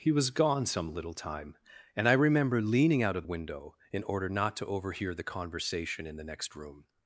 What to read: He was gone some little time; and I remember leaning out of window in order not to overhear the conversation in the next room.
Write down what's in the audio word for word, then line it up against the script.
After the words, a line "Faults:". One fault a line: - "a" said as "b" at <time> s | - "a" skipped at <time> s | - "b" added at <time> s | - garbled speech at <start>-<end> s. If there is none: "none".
He was gone some little time; and I remember leaning out of window in order not to overhear the conversation in the next room.
Faults:
none